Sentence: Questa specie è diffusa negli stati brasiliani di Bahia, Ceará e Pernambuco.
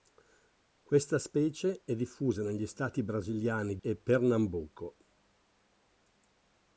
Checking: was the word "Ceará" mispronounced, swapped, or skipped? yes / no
yes